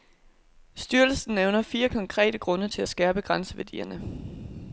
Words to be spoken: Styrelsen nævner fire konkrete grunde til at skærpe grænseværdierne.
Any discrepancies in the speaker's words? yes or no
no